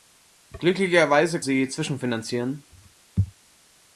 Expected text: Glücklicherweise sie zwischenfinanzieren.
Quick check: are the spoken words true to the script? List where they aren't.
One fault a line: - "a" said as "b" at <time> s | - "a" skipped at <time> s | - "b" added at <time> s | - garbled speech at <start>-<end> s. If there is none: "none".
none